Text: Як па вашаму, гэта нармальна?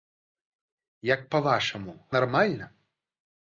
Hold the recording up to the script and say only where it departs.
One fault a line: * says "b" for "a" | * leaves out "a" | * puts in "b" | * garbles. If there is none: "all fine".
* leaves out "гэта"